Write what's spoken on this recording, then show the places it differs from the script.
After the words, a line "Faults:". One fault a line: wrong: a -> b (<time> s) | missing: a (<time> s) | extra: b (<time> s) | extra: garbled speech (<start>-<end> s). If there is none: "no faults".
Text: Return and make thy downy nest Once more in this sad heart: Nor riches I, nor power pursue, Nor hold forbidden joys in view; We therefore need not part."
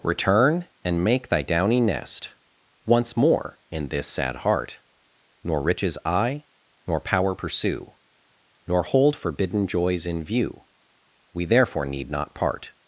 Return and make thy downy nest Once more in this sad heart: Nor riches I, nor power pursue, Nor hold forbidden joys in view; We therefore need not part."
Faults:
no faults